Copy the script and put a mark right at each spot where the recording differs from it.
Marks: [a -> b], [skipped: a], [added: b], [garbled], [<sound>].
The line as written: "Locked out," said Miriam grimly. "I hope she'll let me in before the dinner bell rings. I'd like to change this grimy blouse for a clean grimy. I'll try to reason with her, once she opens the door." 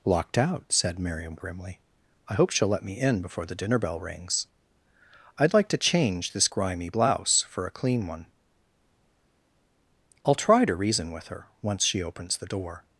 "Locked out," said Miriam grimly. "I hope she'll let me in before the dinner bell rings. I'd like to change this grimy blouse for a clean [grimy. -> one] I'll try to reason with her, once she opens the door."